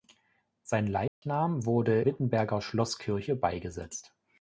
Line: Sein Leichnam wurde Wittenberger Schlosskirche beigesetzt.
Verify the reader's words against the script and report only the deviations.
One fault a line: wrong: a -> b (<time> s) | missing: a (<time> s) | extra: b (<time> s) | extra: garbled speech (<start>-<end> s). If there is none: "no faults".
no faults